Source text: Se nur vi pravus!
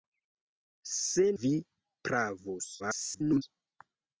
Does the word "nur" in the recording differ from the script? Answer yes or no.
yes